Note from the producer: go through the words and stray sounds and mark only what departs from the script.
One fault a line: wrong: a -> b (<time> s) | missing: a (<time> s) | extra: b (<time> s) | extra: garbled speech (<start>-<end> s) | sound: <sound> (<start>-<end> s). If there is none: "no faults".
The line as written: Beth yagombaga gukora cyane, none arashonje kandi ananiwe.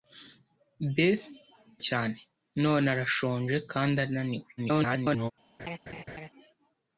missing: yagombaga gukora (1.2 s)
extra: garbled speech (4.6-5.3 s)
sound: laugh (5.6-6.3 s)